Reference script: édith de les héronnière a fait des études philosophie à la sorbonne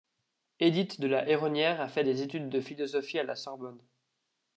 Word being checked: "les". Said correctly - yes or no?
no